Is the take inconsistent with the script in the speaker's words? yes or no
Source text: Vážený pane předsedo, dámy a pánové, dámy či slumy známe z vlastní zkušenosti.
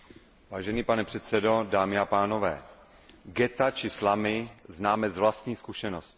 yes